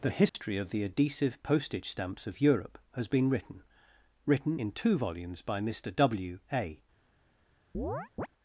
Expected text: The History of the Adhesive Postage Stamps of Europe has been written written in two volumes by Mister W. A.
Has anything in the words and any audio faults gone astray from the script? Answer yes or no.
yes